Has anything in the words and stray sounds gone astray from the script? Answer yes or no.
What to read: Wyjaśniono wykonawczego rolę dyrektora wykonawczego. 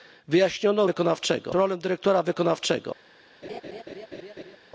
yes